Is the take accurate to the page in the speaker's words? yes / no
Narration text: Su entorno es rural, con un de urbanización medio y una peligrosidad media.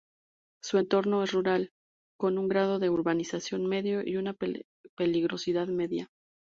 no